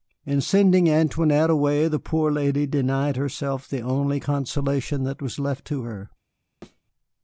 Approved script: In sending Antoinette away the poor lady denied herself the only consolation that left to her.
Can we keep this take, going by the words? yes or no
no